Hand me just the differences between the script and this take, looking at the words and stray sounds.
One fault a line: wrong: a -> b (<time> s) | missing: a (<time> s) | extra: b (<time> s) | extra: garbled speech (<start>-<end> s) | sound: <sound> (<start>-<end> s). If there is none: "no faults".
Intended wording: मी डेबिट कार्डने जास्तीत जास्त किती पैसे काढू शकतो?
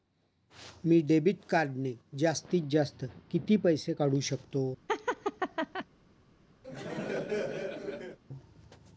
sound: laugh (4.9-5.9 s)
sound: laugh (6.6-8.2 s)